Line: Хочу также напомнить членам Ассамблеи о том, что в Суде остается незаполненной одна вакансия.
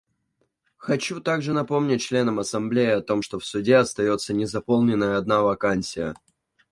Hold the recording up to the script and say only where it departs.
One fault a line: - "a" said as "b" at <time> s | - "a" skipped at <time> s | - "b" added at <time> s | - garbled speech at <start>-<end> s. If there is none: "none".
none